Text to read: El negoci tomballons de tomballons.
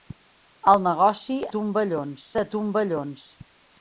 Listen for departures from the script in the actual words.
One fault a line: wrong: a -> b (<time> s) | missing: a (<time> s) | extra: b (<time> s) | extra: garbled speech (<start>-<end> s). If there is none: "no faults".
no faults